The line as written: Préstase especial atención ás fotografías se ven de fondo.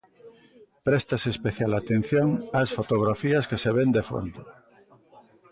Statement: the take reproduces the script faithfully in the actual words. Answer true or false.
false